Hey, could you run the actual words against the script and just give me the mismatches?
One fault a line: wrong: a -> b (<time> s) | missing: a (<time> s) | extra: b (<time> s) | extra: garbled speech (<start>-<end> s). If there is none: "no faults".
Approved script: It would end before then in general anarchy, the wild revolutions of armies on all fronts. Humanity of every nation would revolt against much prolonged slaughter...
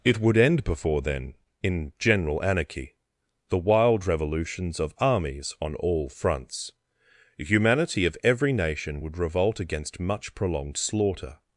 no faults